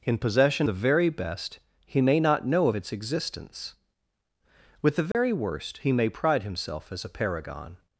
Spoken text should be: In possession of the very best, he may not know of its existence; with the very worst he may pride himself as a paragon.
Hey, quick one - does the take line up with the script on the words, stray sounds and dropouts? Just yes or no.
no